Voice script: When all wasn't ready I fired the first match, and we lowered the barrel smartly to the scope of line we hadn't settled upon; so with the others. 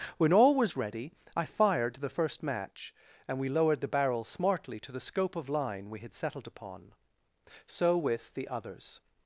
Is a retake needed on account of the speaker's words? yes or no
yes